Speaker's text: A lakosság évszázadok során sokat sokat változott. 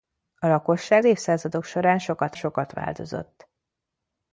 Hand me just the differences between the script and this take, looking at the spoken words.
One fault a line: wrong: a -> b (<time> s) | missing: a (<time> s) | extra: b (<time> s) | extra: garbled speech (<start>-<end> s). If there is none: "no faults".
no faults